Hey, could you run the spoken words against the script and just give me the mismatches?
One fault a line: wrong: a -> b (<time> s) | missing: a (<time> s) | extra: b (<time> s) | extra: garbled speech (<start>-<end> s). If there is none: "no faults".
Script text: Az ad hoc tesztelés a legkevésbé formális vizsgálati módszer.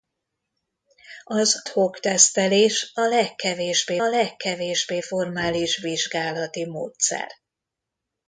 missing: ad (1.6 s)
extra: legkevésbé (4.0 s)